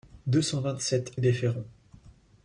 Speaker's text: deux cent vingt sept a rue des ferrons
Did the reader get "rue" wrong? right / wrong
wrong